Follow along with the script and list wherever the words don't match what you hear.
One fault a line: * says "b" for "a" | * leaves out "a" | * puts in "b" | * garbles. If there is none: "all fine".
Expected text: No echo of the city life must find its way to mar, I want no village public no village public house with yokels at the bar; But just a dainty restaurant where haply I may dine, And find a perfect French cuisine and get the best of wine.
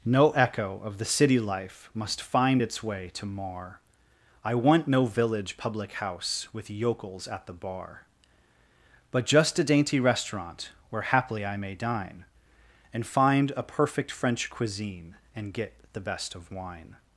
* leaves out "no village public"